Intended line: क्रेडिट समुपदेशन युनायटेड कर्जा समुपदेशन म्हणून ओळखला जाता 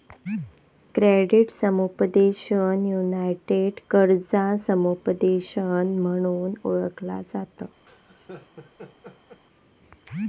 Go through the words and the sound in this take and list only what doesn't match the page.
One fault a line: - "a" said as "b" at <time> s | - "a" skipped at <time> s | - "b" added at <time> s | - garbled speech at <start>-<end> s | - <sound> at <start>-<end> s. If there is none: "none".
- laugh at 7.9-9.4 s